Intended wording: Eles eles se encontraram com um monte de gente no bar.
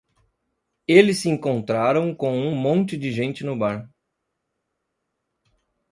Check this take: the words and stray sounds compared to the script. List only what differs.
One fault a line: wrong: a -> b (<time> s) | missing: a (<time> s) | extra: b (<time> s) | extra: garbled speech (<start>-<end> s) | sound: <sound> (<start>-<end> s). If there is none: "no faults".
missing: eles (1.2 s)